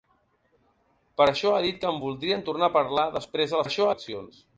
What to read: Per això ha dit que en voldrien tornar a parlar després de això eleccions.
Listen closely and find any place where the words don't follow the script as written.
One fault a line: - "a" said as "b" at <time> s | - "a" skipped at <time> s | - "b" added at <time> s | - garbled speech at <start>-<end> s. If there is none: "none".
none